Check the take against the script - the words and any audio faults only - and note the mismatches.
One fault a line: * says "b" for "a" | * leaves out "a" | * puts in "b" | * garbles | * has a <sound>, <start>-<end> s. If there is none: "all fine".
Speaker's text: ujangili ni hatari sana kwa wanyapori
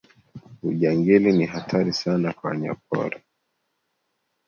all fine